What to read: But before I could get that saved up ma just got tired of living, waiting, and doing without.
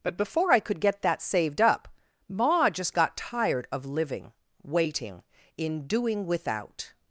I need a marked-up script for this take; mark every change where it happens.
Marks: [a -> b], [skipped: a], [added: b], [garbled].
But before I could get that saved up ma just got tired of living, waiting, [and -> in] doing without.